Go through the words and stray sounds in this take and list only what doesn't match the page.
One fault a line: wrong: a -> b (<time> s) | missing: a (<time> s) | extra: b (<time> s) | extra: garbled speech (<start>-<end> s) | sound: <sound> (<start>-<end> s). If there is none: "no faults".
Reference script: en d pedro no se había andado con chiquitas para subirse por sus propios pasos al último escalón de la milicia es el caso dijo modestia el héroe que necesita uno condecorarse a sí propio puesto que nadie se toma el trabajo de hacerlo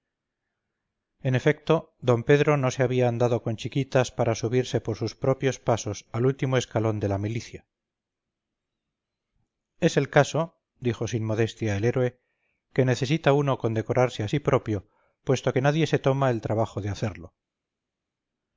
extra: efecto (1.4 s)
extra: sin (11.1 s)